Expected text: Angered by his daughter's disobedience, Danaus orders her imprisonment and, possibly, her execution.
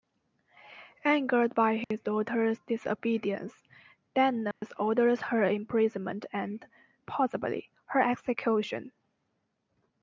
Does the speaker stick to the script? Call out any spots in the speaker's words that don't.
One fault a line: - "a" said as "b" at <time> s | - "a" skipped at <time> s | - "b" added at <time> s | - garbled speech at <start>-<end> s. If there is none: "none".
none